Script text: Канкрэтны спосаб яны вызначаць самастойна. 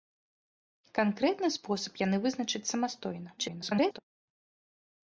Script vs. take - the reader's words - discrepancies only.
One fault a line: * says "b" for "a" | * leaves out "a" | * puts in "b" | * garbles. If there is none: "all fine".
* garbles